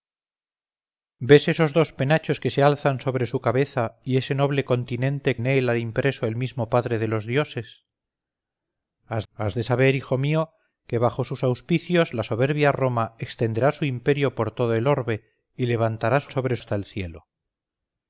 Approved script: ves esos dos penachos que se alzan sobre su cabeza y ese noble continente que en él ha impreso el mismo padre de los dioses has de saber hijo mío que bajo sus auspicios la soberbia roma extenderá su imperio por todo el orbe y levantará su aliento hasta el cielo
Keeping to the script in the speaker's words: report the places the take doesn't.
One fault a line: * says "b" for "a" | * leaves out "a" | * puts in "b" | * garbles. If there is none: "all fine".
* leaves out "que"
* puts in "has"
* says "sobre" for "aliento"